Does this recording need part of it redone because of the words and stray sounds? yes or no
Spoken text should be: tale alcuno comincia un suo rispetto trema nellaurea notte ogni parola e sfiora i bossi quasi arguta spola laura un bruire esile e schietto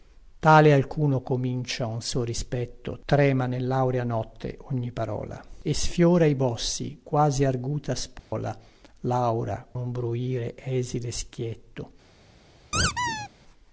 yes